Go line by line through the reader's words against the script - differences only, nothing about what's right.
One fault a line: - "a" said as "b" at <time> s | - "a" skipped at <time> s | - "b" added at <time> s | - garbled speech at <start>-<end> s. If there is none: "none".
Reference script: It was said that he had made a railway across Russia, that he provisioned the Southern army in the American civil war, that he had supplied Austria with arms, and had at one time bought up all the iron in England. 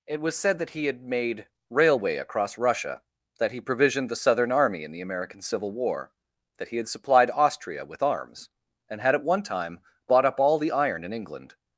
- "a" skipped at 1.5 s